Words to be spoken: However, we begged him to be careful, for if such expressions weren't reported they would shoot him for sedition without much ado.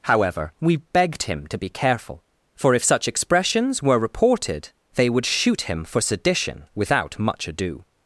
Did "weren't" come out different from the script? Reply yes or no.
yes